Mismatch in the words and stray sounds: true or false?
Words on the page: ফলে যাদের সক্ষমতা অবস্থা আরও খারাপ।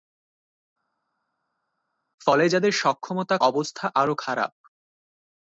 false